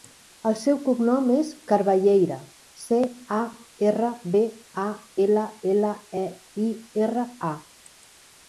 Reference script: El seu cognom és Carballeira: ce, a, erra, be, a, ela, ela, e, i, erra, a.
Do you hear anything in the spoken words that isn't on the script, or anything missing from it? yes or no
no